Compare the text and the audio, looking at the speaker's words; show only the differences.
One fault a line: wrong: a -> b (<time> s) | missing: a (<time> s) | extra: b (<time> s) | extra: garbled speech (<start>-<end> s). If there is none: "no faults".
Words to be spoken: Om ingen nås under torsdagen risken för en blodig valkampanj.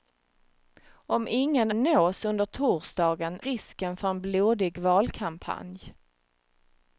no faults